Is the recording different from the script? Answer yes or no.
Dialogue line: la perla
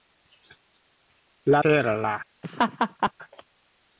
no